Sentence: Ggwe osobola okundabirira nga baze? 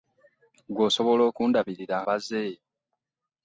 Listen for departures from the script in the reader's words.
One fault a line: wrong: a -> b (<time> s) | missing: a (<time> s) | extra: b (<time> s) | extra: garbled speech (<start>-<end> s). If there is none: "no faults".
missing: nga (2.0 s)